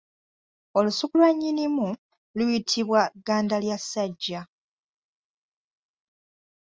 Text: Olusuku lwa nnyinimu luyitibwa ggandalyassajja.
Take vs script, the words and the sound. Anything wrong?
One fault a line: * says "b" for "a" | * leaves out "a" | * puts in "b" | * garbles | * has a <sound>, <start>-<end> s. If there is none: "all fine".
all fine